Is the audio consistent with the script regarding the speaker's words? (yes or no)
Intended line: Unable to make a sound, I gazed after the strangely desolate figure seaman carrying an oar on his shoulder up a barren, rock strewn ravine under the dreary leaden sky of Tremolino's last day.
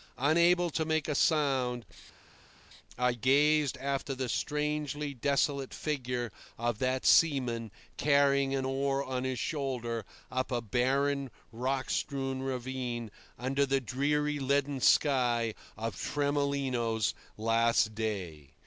no